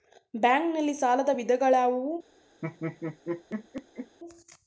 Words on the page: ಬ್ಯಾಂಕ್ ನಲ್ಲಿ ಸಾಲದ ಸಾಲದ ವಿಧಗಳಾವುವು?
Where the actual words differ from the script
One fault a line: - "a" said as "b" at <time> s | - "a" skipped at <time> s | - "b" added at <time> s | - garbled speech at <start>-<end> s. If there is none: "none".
- "ಸಾಲದ" skipped at 1.3 s